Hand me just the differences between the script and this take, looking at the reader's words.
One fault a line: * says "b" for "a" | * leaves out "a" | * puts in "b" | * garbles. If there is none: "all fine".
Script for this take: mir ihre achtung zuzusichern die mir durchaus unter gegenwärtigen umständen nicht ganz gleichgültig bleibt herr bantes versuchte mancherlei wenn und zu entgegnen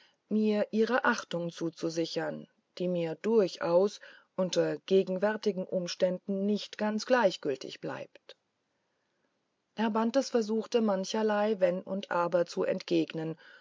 * puts in "aber"